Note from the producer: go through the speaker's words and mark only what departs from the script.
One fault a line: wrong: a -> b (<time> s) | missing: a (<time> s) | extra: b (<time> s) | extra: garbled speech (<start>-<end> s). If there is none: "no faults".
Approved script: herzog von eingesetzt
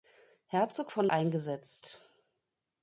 no faults